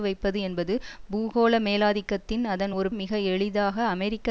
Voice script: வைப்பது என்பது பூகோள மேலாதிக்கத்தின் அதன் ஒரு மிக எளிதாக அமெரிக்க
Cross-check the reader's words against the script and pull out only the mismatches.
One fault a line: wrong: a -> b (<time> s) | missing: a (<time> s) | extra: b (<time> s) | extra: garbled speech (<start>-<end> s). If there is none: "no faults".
no faults